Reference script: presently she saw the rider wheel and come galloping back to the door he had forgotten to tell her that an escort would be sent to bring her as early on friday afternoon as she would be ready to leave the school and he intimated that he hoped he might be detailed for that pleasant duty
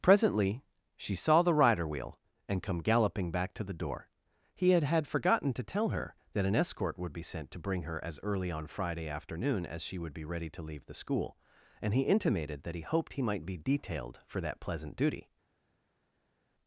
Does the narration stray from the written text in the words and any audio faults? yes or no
yes